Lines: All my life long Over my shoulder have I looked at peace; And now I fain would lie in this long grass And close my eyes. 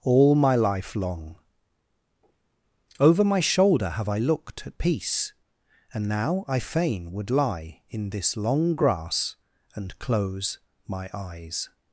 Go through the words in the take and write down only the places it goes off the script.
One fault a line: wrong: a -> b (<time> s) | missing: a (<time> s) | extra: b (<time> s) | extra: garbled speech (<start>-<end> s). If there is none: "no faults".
no faults